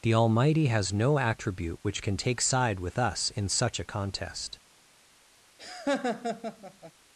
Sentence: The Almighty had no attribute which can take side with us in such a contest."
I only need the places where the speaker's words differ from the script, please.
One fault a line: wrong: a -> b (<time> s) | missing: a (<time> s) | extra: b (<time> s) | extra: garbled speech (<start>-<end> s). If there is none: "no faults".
wrong: had -> has (0.7 s)